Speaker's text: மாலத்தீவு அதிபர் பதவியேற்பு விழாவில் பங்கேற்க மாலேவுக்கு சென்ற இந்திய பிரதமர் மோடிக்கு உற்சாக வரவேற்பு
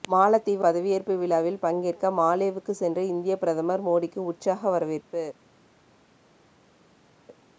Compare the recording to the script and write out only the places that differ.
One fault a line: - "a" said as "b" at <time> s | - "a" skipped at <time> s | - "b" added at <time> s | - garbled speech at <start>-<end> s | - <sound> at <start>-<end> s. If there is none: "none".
- "அதிபர்" skipped at 0.7 s